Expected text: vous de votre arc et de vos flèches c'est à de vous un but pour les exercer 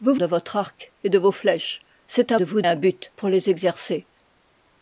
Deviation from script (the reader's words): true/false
false